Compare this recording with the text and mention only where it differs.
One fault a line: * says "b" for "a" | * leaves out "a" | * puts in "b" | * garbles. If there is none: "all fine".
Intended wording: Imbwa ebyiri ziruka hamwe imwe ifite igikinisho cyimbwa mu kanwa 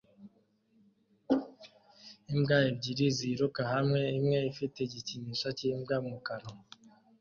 all fine